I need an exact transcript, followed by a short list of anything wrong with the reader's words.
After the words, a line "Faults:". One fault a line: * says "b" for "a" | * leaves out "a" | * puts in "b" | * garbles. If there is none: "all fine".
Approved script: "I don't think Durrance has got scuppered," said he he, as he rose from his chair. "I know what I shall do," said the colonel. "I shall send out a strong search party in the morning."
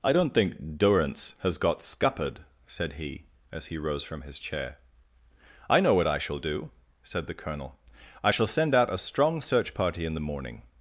"I don't think Durrance has got scuppered," said he, as he rose from his chair. "I know what I shall do," said the colonel. "I shall send out a strong search party in the morning."
Faults:
* leaves out "he"